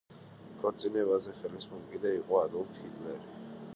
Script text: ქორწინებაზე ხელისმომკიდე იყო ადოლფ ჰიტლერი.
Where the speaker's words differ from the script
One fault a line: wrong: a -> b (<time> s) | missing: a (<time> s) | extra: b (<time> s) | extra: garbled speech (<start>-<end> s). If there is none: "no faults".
no faults